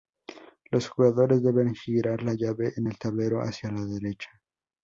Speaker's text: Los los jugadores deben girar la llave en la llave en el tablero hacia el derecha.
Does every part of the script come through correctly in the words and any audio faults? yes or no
no